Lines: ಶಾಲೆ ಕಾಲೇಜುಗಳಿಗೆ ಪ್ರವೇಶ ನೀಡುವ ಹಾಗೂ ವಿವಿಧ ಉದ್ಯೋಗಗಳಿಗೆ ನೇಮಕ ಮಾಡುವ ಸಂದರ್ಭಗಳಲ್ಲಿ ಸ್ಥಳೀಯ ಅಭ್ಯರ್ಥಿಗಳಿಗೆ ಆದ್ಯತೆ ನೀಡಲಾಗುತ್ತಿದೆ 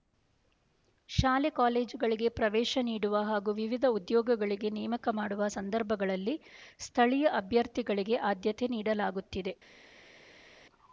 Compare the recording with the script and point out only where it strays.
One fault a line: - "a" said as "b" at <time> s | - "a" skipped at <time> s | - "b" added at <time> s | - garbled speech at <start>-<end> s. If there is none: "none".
none